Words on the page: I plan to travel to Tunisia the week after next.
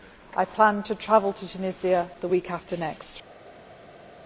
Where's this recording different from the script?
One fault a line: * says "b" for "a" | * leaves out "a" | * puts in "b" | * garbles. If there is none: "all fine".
all fine